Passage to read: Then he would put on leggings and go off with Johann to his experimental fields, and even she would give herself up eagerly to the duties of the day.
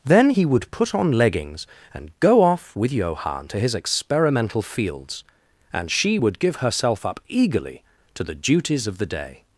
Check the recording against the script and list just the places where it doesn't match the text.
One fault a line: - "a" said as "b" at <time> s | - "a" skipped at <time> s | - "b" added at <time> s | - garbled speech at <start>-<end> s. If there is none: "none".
- "even" skipped at 5.9 s